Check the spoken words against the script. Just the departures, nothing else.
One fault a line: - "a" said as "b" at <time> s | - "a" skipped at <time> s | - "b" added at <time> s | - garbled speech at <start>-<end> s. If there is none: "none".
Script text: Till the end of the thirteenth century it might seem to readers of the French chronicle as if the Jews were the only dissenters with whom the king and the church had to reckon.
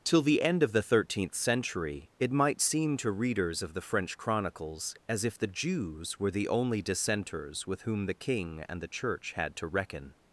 - "chronicle" said as "chronicles" at 4.2 s